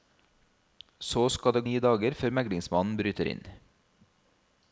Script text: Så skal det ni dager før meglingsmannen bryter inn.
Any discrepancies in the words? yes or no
no